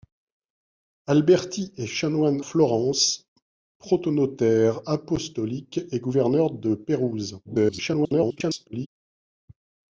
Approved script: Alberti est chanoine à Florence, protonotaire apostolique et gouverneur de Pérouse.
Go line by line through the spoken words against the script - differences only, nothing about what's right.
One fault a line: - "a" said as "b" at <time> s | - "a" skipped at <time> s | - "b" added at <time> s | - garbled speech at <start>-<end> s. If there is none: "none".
- "à" skipped at 2.4 s
- garbled speech at 7.4-8.9 s